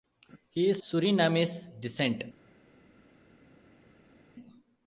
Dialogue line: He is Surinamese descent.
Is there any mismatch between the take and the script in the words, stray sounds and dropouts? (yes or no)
no